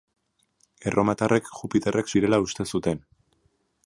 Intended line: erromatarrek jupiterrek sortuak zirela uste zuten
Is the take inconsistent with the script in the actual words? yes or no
yes